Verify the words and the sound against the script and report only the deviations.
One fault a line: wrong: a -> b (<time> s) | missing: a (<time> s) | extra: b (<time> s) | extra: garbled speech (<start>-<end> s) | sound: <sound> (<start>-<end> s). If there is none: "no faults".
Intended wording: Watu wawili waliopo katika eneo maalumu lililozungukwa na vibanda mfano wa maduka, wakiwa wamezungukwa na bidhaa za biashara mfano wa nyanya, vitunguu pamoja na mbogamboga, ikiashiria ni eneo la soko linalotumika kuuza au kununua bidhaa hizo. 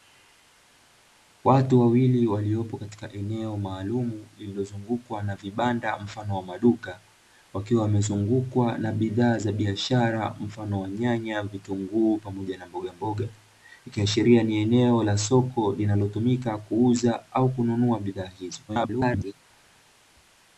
extra: garbled speech (18.7-19.3 s)